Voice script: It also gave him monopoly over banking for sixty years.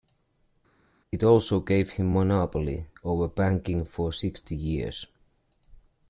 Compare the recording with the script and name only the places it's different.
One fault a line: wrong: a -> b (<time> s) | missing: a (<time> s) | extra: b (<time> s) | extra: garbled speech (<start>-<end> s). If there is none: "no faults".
no faults